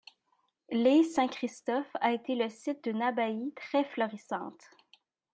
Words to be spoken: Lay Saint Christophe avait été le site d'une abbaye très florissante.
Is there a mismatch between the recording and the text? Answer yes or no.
yes